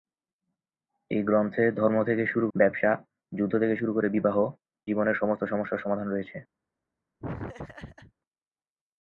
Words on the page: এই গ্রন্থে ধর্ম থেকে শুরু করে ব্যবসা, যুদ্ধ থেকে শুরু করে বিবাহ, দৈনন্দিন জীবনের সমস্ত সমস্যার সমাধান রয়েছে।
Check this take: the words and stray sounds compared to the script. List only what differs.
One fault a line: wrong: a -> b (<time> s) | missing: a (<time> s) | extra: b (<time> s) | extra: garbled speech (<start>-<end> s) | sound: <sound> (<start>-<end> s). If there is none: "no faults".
missing: করে (2.5 s)
missing: দৈনন্দিন (4.4 s)
sound: laugh (7.2-8.1 s)